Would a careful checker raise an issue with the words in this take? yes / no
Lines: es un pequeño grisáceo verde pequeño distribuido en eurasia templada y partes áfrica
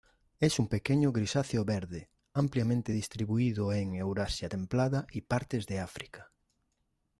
yes